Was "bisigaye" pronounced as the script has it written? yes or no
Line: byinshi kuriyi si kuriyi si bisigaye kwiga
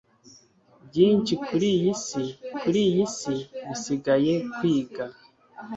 yes